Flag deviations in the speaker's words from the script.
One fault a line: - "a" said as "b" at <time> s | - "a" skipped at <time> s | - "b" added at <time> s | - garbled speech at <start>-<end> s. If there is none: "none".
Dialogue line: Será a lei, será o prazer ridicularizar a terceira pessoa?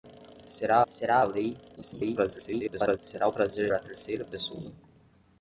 - "será" added at 0.9 s
- garbled speech at 1.8-3.0 s
- "ridicularizar" skipped at 3.7 s